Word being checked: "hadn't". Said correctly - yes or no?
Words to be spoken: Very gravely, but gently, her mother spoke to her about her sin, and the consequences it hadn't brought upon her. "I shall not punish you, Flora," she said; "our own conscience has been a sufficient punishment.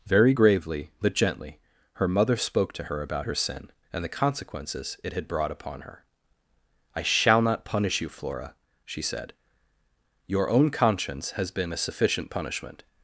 no